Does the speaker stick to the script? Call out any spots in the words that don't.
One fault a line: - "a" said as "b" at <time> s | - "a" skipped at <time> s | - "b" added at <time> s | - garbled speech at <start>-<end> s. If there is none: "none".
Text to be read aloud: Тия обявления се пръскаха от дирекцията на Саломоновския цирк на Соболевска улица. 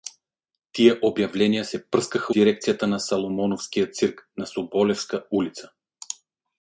- "от" skipped at 2.3 s